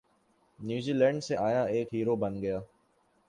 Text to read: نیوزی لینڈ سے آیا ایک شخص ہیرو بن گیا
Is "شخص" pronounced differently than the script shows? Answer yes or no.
yes